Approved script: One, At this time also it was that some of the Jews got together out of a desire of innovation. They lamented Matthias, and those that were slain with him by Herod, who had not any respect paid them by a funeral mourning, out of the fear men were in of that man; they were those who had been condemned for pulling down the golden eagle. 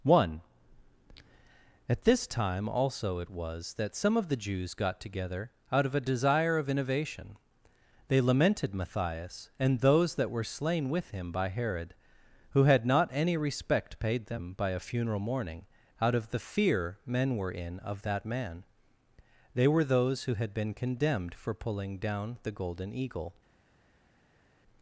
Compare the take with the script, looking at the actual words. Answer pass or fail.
pass